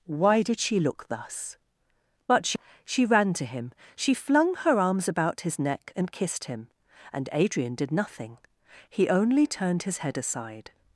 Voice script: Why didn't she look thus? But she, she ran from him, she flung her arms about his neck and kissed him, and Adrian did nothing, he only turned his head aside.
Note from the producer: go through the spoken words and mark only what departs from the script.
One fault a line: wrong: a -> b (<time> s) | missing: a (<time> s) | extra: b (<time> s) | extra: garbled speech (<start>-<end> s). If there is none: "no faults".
wrong: didn't -> did (0.4 s)
wrong: from -> to (3.3 s)